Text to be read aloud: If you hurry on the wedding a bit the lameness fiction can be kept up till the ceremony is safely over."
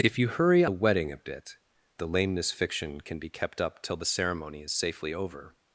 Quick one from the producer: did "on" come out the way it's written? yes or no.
no